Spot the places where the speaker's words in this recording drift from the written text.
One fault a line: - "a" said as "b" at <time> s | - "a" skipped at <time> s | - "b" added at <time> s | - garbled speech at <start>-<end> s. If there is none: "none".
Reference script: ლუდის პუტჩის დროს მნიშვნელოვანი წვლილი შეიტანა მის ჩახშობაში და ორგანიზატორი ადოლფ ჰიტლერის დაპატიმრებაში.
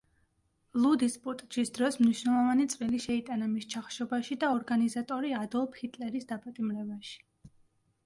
none